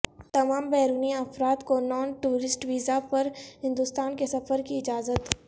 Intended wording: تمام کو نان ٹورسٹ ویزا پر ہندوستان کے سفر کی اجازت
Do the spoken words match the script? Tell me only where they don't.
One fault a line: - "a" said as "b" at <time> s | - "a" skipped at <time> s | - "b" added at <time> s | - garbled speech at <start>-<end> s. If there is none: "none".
- "بیرونی افراد" added at 0.7 s